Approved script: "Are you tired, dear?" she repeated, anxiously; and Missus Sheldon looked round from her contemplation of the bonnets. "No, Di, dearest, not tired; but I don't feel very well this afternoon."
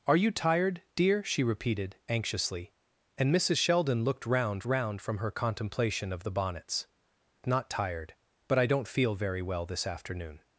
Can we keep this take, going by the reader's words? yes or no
no